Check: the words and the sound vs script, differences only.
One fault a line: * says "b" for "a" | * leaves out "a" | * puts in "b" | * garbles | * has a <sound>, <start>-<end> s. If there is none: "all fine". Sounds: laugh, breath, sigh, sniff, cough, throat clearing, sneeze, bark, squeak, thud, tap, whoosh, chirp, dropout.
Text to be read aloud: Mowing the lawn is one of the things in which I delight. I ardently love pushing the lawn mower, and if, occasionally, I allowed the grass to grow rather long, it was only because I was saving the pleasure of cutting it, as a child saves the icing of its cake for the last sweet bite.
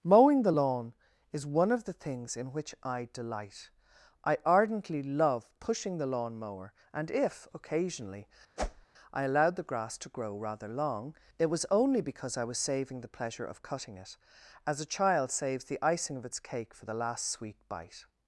* has a whoosh, 8.6-8.9 s